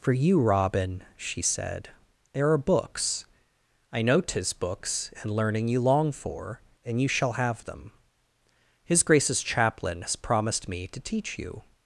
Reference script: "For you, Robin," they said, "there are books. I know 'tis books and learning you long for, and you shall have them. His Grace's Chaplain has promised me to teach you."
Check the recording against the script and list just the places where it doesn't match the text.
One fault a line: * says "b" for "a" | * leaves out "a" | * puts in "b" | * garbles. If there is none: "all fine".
* says "she" for "they"